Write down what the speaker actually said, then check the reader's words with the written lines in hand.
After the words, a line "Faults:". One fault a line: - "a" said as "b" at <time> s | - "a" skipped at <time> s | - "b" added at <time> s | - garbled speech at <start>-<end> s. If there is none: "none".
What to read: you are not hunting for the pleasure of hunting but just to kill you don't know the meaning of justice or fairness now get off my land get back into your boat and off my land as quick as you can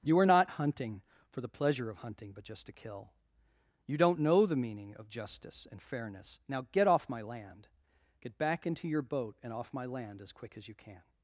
you are not hunting for the pleasure of hunting but just to kill you don't know the meaning of justice and fairness now get off my land get back into your boat and off my land as quick as you can
Faults:
- "or" said as "and" at 5.7 s